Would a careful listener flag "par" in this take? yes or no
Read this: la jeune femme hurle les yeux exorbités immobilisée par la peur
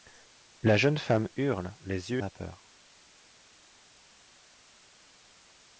yes